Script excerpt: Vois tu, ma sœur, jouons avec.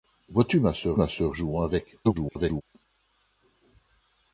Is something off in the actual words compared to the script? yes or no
yes